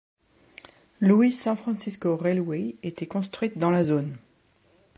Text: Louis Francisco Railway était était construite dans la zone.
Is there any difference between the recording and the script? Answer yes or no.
yes